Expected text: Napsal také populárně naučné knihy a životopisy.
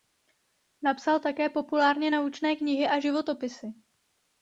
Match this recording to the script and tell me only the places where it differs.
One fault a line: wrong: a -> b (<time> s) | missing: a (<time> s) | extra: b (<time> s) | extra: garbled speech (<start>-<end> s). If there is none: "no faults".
no faults